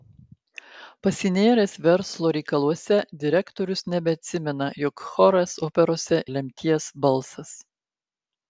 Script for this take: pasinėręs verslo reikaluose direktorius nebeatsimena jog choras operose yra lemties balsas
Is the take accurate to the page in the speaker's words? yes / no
no